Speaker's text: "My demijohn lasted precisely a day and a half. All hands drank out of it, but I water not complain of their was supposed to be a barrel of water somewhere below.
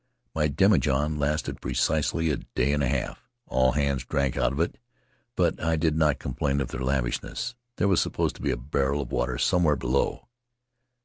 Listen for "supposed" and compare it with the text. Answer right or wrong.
right